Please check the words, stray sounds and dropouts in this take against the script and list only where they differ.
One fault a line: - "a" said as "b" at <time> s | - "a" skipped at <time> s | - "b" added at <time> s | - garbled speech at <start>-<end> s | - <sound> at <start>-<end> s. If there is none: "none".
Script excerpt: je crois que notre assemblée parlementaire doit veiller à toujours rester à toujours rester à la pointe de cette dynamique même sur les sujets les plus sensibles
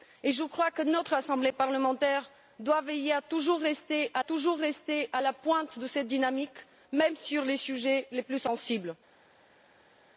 none